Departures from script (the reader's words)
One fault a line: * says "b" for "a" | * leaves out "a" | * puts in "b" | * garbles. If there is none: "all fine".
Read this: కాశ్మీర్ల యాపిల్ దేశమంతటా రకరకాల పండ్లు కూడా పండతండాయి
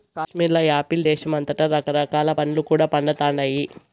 all fine